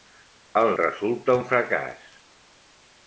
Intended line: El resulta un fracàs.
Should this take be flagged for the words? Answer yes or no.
no